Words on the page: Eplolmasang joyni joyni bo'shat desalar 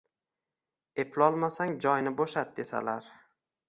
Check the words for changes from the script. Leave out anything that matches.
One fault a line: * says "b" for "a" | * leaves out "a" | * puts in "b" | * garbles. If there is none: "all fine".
* leaves out "joyni"